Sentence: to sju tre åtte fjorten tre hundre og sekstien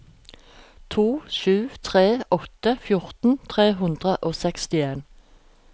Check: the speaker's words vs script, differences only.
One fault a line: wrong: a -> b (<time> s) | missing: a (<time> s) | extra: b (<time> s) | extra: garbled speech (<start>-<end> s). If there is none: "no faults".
no faults